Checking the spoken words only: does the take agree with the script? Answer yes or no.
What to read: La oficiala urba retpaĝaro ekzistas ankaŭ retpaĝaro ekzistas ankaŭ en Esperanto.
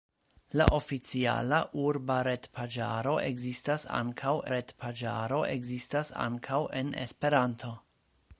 yes